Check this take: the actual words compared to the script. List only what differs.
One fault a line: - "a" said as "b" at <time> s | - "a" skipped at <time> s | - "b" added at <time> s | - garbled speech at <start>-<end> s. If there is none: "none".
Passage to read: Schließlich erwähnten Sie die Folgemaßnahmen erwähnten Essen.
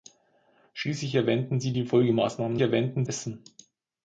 none